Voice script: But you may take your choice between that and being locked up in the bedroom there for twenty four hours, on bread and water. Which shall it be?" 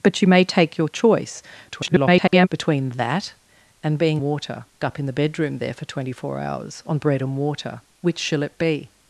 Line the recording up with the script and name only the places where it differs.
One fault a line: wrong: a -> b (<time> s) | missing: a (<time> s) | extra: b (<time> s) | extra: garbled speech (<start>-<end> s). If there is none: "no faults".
extra: garbled speech (1.7-2.5 s)
wrong: locked -> water (4.2 s)